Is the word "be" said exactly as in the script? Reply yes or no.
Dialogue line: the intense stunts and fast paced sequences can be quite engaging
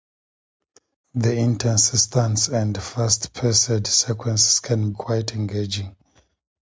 no